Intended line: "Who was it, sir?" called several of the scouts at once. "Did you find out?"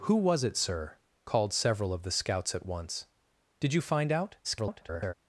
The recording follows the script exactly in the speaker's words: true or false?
false